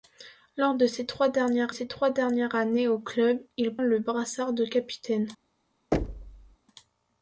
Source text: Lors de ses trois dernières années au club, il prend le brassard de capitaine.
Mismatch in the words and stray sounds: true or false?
true